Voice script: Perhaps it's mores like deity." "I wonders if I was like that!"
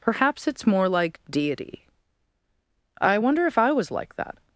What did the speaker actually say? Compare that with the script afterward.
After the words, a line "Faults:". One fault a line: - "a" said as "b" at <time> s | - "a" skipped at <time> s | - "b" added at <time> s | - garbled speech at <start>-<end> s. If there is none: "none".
Perhaps it's more like deity." "I wonder if I was like that!"
Faults:
- "mores" said as "more" at 0.7 s
- "wonders" said as "wonder" at 3.2 s